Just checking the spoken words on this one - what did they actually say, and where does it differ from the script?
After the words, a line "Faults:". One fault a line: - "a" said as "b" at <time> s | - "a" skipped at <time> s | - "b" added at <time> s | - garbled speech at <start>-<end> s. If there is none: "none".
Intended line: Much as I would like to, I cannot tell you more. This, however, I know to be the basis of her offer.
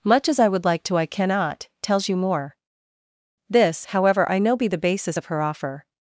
Much as I would like to, I cannot tells you more. This, however, I know be the basis of her offer.
Faults:
- "tell" said as "tells" at 1.8 s
- "to" skipped at 4.5 s